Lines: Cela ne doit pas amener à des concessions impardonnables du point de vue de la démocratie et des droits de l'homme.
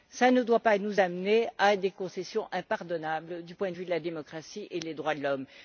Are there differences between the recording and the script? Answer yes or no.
yes